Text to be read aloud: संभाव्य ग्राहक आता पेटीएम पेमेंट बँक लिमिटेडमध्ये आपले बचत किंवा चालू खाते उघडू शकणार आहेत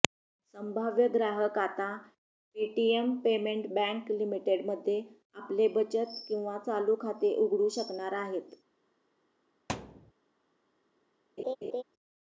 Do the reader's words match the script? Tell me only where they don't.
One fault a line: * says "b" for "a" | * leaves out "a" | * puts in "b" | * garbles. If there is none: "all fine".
all fine